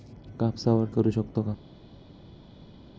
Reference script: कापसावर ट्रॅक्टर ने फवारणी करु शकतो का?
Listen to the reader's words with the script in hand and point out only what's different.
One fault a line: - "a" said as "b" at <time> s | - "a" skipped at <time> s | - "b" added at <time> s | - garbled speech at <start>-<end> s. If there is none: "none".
- "ट्रॅक्टर ने फवारणी" skipped at 0.8 s